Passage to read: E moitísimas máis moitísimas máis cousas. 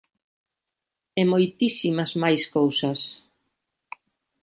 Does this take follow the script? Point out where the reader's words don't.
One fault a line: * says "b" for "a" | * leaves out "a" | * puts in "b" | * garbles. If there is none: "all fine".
* leaves out "moitísimas máis"